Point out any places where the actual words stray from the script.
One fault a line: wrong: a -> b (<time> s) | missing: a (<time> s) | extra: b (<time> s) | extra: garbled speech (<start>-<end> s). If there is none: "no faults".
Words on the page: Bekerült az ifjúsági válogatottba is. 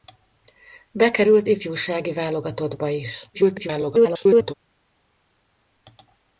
missing: az (1.5 s)
extra: garbled speech (3.3-4.5 s)